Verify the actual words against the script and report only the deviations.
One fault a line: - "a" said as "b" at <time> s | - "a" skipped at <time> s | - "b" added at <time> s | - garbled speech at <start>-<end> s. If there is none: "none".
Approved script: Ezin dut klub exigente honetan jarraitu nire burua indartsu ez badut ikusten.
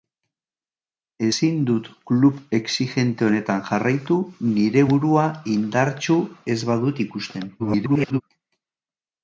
- garbled speech at 7.6-8.2 s